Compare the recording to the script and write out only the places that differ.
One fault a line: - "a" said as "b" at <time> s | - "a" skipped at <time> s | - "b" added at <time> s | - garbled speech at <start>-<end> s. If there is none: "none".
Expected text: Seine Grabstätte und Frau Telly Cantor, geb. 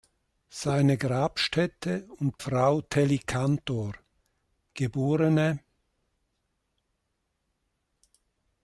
none